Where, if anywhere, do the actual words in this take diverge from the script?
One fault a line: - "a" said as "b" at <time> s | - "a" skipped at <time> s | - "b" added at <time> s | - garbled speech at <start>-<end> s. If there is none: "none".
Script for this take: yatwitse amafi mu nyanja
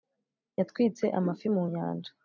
none